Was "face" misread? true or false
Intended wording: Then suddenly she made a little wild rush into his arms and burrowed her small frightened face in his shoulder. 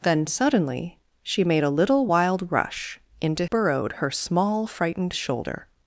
true